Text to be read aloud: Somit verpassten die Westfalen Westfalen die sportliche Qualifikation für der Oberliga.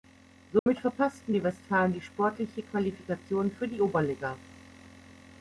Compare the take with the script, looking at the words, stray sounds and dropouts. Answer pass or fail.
fail